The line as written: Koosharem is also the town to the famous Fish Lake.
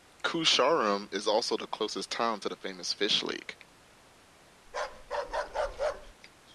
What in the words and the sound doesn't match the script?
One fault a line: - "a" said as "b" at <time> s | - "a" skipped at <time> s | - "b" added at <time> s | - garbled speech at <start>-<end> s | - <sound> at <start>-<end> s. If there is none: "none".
- "closest" added at 1.7 s
- bark at 4.7-6.1 s